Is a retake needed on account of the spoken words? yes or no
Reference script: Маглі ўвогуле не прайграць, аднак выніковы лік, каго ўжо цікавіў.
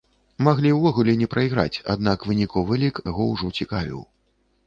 no